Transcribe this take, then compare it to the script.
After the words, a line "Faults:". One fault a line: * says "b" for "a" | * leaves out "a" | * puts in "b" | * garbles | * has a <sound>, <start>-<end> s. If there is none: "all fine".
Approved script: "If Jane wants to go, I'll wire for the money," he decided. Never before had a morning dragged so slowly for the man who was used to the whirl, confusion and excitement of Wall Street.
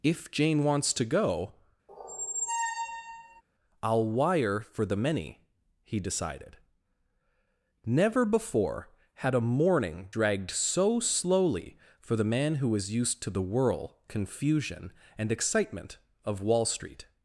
"If Jane wants to go, I'll wire for the many," he decided. Never before had a morning dragged so slowly for the man who was used to the whirl, confusion and excitement of Wall Street.
Faults:
* has a squeak, 1.9-3.4 s
* says "many" for "money"